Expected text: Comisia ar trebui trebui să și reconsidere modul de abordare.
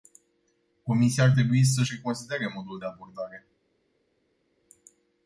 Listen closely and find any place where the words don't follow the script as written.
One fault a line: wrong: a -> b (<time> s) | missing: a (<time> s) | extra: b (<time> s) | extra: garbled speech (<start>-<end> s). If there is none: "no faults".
missing: trebui (1.6 s)